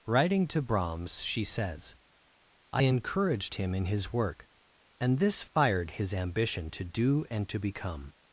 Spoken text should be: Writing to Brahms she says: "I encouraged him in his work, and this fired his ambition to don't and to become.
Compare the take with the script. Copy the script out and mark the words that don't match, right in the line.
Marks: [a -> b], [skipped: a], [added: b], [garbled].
Writing to Brahms she says: "I encouraged him in his work, and this fired his ambition to [don't -> do] and to become.